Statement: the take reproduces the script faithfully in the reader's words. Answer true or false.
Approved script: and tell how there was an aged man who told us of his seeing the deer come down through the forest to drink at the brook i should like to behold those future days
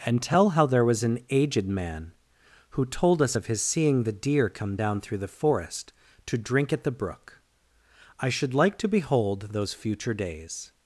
true